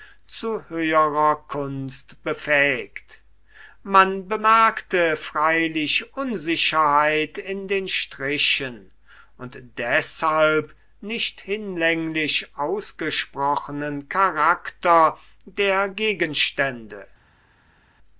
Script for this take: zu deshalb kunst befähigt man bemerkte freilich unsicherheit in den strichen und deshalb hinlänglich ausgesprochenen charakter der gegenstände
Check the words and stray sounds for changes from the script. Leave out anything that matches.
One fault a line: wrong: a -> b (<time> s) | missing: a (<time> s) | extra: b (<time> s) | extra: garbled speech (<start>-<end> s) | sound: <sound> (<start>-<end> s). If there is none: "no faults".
wrong: deshalb -> höherer (0.7 s)
extra: nicht (11.0 s)